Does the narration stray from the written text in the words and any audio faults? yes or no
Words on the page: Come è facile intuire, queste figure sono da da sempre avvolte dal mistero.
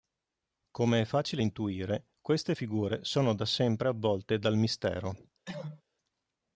yes